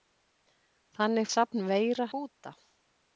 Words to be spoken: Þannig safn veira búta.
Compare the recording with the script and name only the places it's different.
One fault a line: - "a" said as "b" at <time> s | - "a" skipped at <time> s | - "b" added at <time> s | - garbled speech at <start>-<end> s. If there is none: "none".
none